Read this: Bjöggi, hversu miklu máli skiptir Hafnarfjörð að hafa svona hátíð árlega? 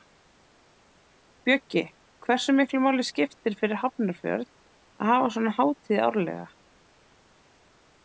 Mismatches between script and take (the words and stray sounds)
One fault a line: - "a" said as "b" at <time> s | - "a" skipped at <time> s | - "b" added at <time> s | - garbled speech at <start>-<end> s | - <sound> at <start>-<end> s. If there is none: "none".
- "fyrir" added at 3.6 s